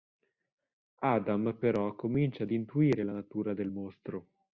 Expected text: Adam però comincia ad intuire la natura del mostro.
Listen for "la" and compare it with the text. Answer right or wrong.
right